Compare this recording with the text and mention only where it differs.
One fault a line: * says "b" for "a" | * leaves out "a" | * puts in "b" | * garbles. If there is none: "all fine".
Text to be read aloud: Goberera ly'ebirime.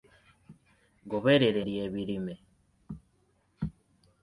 all fine